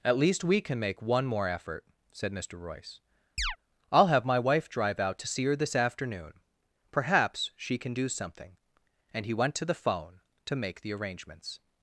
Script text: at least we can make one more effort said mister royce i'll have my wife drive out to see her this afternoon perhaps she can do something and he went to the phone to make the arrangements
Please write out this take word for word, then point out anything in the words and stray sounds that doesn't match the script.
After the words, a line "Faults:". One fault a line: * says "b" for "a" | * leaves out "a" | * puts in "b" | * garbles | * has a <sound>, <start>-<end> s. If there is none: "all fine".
at least we can make one more effort said mister royce i'll have my wife drive out to see her this afternoon perhaps she can do something and he went to the phone to make the arrangements
Faults:
* has a chirp, 3.4-3.6 s